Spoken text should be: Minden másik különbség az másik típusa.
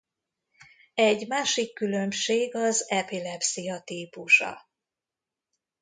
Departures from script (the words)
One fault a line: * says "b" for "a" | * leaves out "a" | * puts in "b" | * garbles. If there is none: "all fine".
* says "Egy" for "Minden"
* says "epilepszia" for "másik"